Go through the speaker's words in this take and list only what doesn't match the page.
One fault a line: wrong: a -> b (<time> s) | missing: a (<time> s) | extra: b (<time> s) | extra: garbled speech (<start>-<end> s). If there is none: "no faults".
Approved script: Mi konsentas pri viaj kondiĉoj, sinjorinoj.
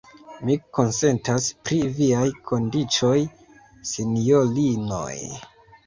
no faults